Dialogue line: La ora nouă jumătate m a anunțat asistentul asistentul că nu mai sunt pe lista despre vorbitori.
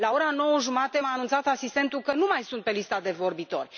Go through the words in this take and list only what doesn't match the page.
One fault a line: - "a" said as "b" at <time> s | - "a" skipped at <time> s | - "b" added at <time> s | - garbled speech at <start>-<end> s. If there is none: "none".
- "asistentul" skipped at 2.0 s
- "despre" said as "de" at 3.0 s